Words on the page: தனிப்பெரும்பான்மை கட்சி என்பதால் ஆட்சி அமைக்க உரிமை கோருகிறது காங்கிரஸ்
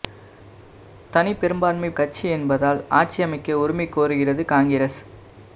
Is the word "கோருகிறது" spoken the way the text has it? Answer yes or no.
yes